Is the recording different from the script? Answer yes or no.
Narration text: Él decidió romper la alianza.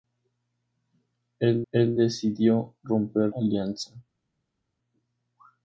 yes